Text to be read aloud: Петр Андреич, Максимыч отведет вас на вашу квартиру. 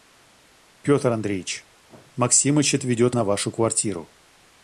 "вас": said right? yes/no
no